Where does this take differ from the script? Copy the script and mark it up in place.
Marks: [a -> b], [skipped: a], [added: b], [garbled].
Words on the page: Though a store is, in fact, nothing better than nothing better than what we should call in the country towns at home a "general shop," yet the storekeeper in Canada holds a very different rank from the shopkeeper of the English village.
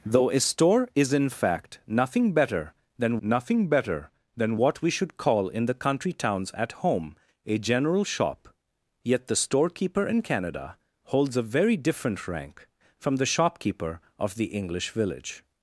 Though a store is, in fact, nothing better than nothing better than what we should call in the country towns at home a "general shop," yet the storekeeper in Canada holds a very different rank from the shopkeeper of the English village.